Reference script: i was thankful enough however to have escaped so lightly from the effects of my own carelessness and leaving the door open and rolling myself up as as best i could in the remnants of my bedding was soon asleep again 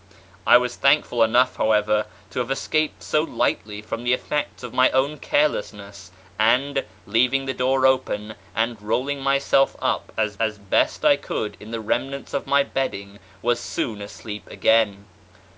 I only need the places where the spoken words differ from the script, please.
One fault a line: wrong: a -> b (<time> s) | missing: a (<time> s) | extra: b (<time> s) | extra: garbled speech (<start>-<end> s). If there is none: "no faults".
no faults